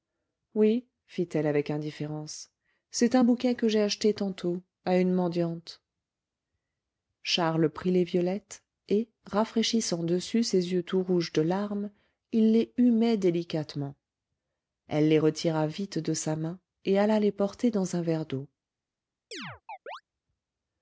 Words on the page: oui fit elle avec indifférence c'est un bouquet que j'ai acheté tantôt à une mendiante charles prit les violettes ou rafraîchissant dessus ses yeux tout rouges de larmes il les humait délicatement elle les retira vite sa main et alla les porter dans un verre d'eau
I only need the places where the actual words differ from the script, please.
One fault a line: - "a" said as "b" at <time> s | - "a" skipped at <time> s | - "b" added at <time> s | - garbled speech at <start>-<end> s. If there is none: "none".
- "ou" said as "et" at 8.9 s
- "de" added at 16.0 s